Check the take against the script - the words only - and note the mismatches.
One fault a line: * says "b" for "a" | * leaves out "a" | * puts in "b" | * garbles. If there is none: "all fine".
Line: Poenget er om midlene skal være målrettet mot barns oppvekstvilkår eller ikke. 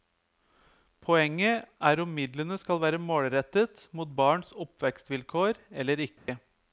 all fine